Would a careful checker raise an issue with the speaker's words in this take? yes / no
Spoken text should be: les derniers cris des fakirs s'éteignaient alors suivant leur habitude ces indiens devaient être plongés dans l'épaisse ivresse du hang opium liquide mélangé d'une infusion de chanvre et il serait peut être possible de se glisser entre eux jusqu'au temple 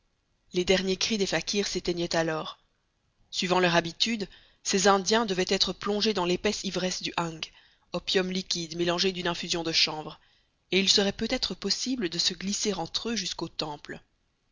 no